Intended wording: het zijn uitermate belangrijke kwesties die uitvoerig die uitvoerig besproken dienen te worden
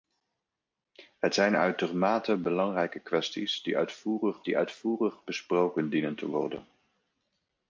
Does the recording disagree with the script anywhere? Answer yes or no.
no